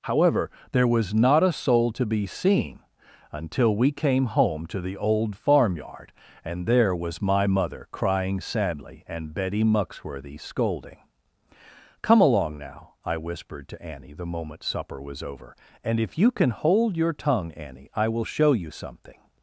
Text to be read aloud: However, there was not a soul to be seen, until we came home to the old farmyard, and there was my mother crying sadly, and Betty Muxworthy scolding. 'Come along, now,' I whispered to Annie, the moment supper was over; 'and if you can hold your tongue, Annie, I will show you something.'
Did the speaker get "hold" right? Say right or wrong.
right